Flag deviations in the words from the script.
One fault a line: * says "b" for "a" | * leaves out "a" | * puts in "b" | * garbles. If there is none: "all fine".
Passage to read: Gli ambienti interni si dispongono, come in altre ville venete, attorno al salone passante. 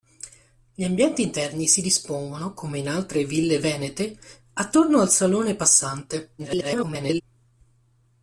* garbles